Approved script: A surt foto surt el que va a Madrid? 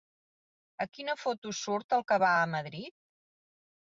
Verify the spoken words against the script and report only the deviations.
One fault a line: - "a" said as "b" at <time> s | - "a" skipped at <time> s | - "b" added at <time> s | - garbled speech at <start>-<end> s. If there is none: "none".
- "surt" said as "quina" at 1.0 s